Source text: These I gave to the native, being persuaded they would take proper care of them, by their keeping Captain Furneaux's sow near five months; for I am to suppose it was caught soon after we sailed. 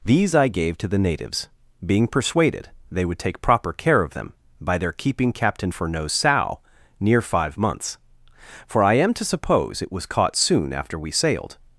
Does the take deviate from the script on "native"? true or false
true